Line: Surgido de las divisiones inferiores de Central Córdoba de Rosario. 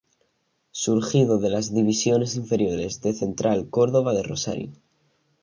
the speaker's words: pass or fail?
pass